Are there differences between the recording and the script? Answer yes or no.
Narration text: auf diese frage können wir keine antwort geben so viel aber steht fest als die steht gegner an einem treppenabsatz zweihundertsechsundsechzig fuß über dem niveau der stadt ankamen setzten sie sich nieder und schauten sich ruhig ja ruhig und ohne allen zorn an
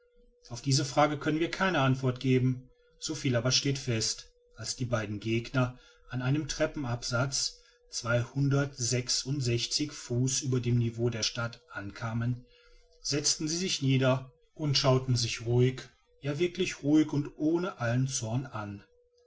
yes